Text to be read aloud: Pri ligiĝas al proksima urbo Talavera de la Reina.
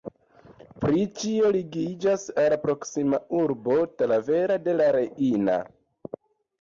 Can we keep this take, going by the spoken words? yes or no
no